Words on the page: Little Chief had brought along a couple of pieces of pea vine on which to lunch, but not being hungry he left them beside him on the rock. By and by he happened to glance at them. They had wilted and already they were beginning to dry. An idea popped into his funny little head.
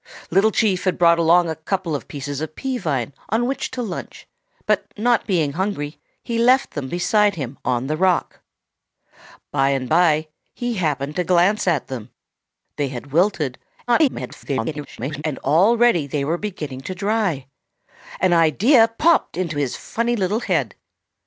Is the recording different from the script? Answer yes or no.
yes